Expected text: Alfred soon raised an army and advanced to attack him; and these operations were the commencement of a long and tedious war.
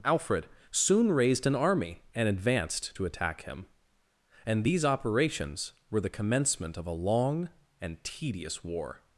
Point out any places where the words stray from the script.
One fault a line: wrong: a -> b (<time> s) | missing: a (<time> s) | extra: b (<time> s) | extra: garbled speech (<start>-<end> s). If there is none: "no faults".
no faults